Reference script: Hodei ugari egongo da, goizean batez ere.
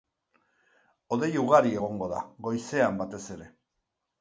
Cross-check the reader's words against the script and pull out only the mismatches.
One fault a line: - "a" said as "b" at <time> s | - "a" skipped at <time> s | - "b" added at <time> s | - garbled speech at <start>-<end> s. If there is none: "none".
none